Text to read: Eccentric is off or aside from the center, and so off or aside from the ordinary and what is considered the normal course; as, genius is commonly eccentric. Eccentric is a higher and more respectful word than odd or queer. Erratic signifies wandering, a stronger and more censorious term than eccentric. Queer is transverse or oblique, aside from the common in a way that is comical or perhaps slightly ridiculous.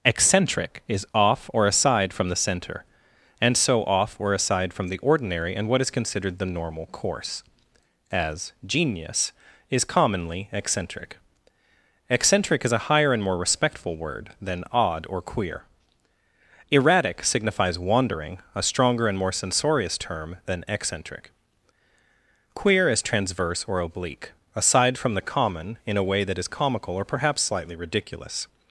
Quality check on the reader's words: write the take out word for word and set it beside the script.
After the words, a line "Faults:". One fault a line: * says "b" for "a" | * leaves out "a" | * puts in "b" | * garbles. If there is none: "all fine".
Eccentric is off or aside from the center, and so off or aside from the ordinary and what is considered the normal course; as, genius is commonly eccentric. Eccentric is a higher and more respectful word than odd or queer. Erratic signifies wandering, a stronger and more censorious term than eccentric. Queer is transverse or oblique, aside from the common in a way that is comical or perhaps slightly ridiculous.
Faults:
all fine